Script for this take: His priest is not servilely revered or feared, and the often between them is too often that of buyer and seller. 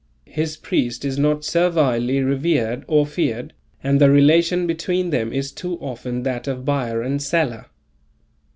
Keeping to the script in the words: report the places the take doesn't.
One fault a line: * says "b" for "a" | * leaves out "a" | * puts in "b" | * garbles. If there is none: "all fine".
* says "relation" for "often"